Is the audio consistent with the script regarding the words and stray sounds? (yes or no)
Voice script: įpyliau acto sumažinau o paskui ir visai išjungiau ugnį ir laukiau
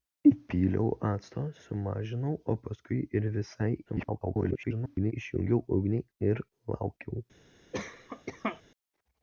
no